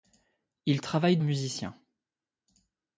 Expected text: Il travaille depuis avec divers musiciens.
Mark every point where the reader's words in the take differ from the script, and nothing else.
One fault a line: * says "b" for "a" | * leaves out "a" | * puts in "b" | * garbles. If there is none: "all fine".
* leaves out "depuis avec divers"